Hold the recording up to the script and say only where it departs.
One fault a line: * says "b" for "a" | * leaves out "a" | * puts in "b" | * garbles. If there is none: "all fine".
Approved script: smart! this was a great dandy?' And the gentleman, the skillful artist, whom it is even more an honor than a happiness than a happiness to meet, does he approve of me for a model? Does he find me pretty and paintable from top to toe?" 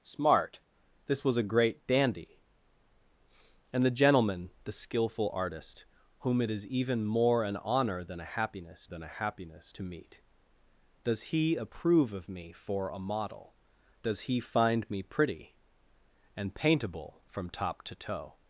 all fine